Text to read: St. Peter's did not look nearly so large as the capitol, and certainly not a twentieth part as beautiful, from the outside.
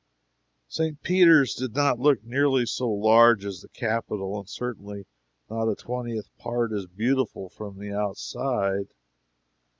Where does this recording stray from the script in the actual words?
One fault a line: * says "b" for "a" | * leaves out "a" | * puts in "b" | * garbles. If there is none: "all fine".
all fine